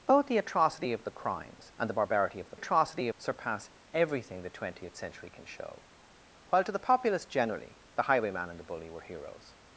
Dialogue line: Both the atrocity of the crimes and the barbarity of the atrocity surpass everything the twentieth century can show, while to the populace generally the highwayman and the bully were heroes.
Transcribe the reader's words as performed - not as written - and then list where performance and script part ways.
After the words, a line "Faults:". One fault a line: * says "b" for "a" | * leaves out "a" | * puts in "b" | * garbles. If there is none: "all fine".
Both the atrocity of the crimes and the barbarity of the atrocity surpass everything the twentieth century can show, while to the populace generally the highwayman and the bully were heroes.
Faults:
all fine